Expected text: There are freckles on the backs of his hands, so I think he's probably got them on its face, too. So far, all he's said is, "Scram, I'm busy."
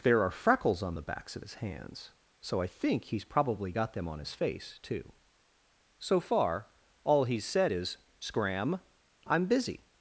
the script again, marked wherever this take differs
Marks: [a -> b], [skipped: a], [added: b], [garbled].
There are freckles on the backs of his hands, so I think he's probably got them on [its -> his] face, too. So far, all he's said is, "Scram, I'm busy."